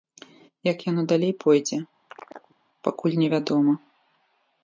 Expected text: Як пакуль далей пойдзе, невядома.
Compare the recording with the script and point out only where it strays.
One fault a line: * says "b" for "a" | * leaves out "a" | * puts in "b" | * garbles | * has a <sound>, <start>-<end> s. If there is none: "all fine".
* says "яно" for "пакуль"
* has a chirp, 2.1-2.6 s
* puts in "пакуль"